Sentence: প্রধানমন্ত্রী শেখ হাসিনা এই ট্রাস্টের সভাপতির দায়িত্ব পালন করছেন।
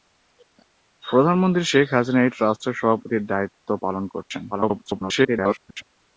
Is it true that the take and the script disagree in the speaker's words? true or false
true